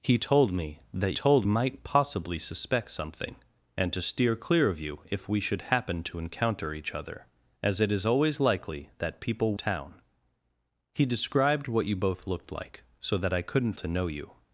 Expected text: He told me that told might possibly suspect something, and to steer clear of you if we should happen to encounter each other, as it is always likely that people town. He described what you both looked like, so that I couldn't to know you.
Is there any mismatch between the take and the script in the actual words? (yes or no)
no